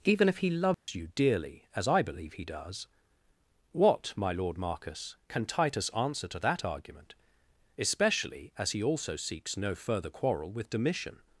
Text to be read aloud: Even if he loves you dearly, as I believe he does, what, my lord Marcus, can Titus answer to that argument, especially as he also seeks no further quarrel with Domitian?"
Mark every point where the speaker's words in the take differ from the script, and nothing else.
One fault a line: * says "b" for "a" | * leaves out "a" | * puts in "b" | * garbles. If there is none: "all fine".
all fine